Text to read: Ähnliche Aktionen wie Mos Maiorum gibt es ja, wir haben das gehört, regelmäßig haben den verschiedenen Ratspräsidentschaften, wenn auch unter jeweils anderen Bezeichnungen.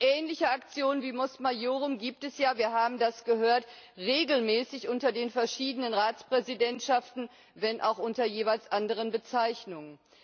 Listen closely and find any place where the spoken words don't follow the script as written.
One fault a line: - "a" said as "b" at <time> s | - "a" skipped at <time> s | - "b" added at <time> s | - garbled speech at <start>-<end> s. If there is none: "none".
- "haben" said as "unter" at 4.9 s